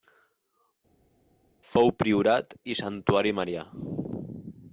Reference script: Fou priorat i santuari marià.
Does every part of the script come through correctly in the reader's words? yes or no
yes